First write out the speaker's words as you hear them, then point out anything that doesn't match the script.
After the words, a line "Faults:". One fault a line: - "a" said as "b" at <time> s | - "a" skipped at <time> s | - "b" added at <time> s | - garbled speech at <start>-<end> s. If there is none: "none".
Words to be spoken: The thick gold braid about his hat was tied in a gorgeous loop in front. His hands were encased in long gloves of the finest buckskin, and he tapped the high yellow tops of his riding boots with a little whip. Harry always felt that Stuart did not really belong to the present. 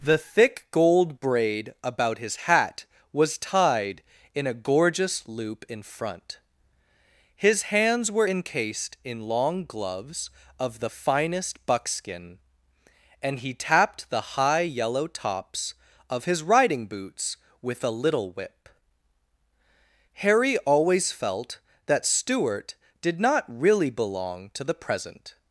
The thick gold braid about his hat was tied in a gorgeous loop in front. His hands were encased in long gloves of the finest buckskin, and he tapped the high yellow tops of his riding boots with a little whip. Harry always felt that Stuart did not really belong to the present.
Faults:
none